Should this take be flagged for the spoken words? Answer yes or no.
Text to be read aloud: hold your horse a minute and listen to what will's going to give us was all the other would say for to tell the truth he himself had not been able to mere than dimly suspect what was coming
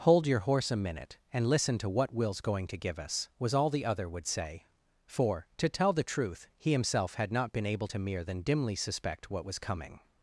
no